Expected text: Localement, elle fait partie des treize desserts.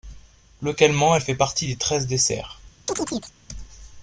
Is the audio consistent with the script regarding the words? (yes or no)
yes